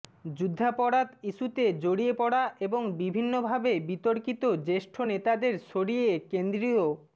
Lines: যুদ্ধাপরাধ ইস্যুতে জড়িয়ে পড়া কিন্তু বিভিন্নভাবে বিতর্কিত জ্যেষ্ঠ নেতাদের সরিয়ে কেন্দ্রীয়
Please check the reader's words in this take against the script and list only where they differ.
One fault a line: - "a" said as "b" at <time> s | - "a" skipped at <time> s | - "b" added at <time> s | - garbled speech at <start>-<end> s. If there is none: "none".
- "কিন্তু" said as "এবং" at 2.6 s